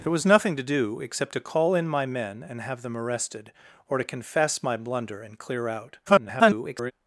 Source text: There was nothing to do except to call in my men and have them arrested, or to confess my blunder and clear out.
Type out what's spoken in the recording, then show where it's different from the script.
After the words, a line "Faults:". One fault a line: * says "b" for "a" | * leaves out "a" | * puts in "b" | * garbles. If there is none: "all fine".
There was nothing to do except to call in my men and have them arrested, or to confess my blunder and clear out. [garbled]
Faults:
* garbles